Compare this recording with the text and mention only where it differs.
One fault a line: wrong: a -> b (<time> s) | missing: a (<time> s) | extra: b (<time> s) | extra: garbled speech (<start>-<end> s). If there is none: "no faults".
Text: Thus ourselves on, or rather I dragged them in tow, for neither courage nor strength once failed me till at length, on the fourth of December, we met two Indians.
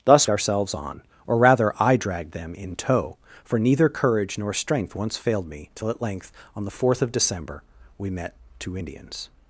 no faults